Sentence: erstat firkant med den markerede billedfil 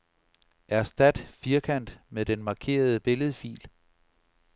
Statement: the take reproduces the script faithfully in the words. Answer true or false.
true